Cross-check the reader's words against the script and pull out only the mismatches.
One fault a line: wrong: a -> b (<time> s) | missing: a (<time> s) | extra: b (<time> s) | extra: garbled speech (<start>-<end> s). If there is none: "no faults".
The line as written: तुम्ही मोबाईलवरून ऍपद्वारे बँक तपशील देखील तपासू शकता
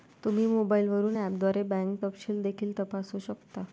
no faults